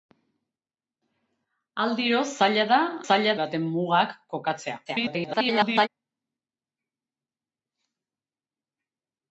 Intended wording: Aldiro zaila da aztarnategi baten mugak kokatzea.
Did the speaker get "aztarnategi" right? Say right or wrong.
wrong